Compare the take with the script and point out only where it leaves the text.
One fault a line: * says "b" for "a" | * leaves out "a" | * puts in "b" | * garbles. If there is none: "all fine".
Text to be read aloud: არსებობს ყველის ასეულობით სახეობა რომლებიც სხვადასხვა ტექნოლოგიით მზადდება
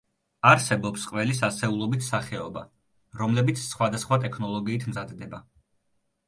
all fine